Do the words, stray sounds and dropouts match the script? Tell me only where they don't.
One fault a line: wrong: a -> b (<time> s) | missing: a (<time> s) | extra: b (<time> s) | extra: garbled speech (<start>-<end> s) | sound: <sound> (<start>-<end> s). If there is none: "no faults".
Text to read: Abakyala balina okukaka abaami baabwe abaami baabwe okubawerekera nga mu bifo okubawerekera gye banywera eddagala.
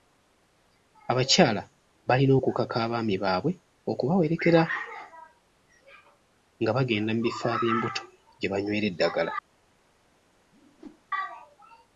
missing: abaami baabwe (3.5 s)
extra: bagenda (6.8 s)
wrong: okubawerekera -> ab'embuto (7.6 s)
sound: whoosh (10.5-11.0 s)